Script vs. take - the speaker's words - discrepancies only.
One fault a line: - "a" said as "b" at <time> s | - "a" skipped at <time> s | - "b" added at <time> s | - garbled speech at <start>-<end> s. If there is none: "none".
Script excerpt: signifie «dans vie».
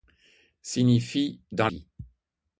none